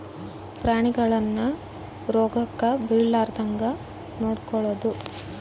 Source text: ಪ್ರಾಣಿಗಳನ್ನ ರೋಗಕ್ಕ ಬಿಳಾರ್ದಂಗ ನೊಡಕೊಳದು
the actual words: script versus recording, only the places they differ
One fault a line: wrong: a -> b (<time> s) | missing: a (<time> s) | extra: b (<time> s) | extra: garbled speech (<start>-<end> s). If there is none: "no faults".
no faults